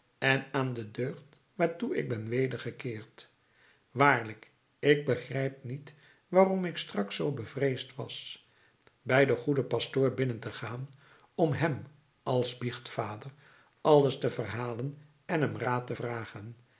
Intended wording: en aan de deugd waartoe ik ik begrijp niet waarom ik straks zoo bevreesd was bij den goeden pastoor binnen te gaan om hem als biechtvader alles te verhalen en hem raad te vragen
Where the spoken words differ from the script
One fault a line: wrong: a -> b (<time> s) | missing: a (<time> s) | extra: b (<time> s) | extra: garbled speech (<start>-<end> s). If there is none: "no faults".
extra: ben wedergekeerd waarlijk (2.1 s)